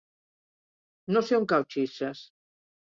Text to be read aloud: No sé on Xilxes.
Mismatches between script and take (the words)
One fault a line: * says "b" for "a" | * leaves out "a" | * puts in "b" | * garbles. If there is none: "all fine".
* puts in "cau"